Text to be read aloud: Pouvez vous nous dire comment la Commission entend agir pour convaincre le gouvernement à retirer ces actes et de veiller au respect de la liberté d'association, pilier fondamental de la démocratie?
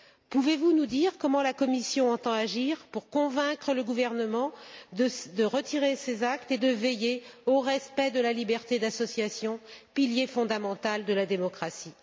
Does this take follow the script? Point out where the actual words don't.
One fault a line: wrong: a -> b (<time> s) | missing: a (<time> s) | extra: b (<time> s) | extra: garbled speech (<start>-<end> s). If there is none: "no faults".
wrong: à -> de (4.9 s)